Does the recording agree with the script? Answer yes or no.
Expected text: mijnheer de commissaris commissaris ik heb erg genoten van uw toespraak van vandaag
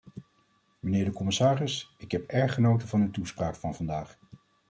no